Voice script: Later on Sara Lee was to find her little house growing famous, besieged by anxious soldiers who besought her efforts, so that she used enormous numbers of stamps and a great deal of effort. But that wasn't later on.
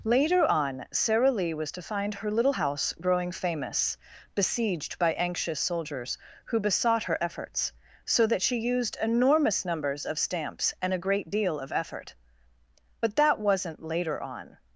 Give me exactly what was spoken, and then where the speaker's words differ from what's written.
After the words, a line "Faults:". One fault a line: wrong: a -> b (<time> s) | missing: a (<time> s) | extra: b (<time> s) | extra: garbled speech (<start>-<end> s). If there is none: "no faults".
Later on Sara Lee was to find her little house growing famous, besieged by anxious soldiers who besought her efforts, so that she used enormous numbers of stamps and a great deal of effort. But that wasn't later on.
Faults:
no faults